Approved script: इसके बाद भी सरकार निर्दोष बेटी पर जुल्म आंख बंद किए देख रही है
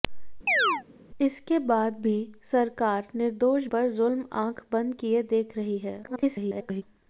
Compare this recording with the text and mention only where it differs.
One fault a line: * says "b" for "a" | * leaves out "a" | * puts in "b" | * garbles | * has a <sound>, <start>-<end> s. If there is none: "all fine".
* has a chirp, 0.5-0.8 s
* leaves out "बेटी"
* garbles